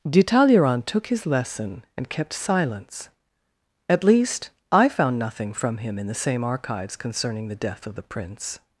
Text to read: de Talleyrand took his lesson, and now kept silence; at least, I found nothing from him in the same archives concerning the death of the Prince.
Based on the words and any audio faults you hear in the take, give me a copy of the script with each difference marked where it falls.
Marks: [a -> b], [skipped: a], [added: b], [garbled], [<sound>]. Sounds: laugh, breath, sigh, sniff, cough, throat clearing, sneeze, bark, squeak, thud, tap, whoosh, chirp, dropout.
de Talleyrand took his lesson, and [skipped: now] kept silence; at least, I found nothing from him in the same archives concerning the death of the Prince.